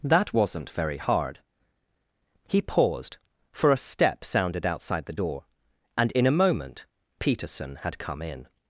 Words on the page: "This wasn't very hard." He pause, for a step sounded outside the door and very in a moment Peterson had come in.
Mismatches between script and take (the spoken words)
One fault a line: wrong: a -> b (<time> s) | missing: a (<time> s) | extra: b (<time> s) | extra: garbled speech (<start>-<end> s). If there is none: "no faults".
wrong: This -> That (0.0 s)
wrong: pause -> paused (2.6 s)
missing: very (6.1 s)